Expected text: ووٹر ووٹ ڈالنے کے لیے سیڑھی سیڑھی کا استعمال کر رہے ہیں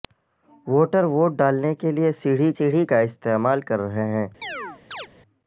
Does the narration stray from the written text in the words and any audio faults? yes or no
yes